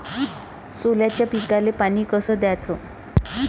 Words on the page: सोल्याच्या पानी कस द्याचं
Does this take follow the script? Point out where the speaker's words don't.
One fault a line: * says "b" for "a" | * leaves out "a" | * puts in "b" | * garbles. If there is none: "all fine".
* puts in "पिकाले"